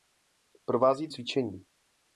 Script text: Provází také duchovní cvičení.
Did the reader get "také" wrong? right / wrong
wrong